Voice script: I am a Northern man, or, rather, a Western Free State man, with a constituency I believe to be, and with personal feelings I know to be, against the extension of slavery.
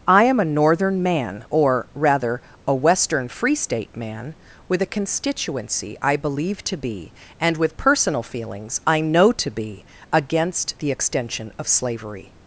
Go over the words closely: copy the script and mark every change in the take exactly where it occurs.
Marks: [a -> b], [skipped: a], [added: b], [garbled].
I am a Northern man, or, rather, a Western Free State man, with a constituency I believe to be, and with personal feelings I know to be, against the extension of slavery.